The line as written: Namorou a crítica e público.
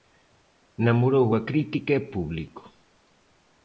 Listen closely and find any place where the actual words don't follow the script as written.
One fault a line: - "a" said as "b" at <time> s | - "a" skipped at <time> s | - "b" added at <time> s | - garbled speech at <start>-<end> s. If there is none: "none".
none